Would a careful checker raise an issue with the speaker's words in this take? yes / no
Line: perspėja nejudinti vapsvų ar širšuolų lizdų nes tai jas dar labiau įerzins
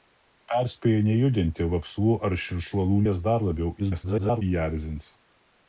yes